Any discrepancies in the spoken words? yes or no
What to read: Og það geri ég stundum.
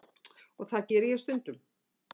no